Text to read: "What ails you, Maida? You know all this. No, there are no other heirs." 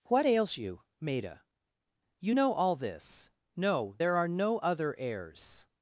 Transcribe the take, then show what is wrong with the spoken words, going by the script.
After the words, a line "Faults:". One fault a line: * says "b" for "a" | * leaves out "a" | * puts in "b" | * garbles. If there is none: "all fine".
"What ails you, Maida? You know all this. No, there are no other heirs."
Faults:
all fine